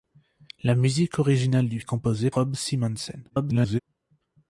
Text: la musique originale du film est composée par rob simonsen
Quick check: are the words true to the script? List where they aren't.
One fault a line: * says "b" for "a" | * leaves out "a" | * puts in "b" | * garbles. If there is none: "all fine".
* leaves out "film"
* leaves out "par"
* garbles